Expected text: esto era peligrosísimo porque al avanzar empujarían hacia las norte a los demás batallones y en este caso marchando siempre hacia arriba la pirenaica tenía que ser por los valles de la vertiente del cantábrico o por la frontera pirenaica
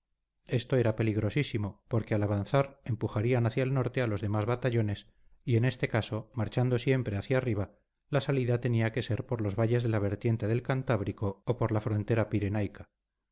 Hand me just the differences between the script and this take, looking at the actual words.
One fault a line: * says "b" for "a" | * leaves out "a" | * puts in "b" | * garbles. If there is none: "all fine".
* says "el" for "las"
* says "salida" for "pirenaica"